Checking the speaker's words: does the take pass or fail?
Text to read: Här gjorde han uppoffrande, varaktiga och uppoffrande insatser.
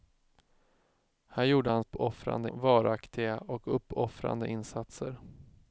pass